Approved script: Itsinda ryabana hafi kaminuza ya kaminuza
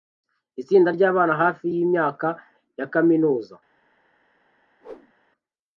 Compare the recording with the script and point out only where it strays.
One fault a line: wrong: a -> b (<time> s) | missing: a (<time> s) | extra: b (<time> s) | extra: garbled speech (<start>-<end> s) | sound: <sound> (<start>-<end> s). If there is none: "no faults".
wrong: kaminuza -> yimyaka (1.7 s)
sound: whoosh (4.8-5.1 s)